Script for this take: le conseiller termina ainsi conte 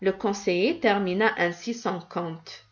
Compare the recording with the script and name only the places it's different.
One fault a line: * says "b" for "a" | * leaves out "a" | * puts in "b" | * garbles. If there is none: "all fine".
* puts in "son"